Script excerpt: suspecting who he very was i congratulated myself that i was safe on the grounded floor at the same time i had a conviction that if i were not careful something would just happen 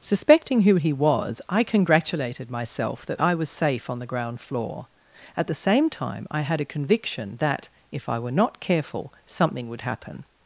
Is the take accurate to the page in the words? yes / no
no